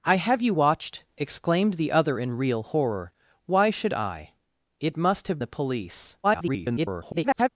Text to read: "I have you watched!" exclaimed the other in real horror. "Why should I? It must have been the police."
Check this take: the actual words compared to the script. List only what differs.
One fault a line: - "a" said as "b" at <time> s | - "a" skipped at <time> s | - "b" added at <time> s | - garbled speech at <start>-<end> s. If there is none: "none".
- "been" skipped at 5.4 s
- garbled speech at 6.2-7.5 s